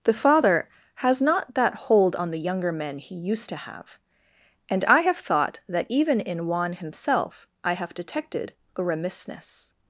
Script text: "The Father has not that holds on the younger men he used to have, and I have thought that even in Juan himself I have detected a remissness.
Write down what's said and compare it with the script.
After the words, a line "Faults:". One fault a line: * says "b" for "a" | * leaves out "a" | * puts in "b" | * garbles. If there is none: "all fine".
"The Father has not that hold on the younger men he used to have, and I have thought that even in Juan himself I have detected a remissness.
Faults:
* says "hold" for "holds"